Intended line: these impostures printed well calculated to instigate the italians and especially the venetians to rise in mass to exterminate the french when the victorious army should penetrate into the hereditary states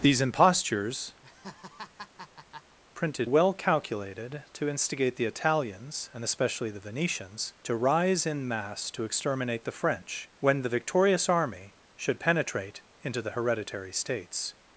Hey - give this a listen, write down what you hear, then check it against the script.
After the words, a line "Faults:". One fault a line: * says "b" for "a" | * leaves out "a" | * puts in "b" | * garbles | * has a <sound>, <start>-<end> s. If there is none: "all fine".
these impostures printed well calculated to instigate the italians and especially the venetians to rise in mass to exterminate the french when the victorious army should penetrate into the hereditary states
Faults:
* has a laugh, 1.2-2.8 s